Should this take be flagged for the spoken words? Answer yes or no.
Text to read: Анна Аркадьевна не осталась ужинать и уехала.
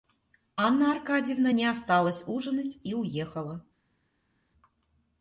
no